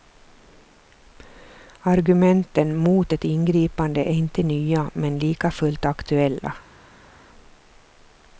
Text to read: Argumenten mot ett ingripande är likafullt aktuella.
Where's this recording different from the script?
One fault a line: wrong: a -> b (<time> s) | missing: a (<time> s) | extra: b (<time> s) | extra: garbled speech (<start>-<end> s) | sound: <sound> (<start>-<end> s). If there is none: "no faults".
extra: inte nya men (4.1 s)